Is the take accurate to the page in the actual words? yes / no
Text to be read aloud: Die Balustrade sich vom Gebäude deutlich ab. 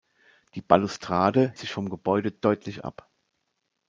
yes